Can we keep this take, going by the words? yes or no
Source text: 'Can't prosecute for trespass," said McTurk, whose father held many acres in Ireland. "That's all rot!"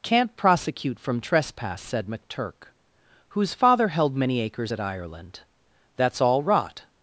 no